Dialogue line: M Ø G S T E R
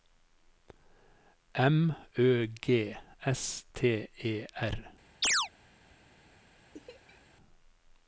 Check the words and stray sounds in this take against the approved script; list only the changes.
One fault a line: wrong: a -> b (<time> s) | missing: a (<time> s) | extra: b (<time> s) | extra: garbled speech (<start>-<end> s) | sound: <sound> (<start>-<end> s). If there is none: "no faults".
sound: chirp (5.2-5.5 s)
sound: laugh (6.7-7.4 s)